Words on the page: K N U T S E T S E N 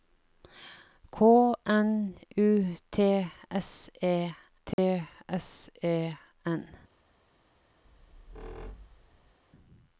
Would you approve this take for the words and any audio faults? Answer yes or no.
no